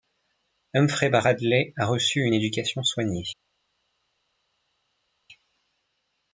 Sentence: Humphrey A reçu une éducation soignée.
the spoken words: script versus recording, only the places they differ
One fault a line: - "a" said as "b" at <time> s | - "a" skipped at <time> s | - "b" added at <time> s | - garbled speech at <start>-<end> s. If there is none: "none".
- "Bradley" added at 1.1 s